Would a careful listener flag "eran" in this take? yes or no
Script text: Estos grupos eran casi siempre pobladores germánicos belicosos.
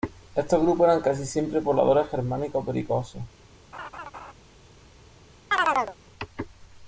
no